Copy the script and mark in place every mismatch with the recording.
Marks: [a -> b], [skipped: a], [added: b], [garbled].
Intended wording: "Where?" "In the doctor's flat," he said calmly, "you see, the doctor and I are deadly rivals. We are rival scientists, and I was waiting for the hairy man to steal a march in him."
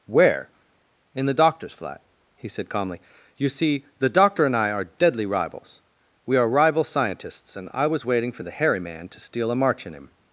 "Where?" "In the doctor's flat," he said calmly, "you see, the doctor and I are deadly rivals. We are rival scientists, and I was waiting for the hairy man to steal a march in him."